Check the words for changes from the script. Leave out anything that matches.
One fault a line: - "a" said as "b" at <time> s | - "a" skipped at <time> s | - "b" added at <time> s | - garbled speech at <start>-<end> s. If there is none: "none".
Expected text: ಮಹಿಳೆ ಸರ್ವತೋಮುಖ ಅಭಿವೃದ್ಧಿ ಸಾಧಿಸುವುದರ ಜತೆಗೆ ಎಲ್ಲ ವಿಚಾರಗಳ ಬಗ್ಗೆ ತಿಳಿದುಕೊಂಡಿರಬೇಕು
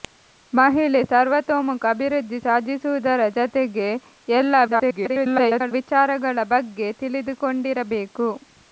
- garbled speech at 4.7-5.7 s